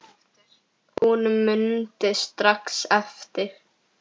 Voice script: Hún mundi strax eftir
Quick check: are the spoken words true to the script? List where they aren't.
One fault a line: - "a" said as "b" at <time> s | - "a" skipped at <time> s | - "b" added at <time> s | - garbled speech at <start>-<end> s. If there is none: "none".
none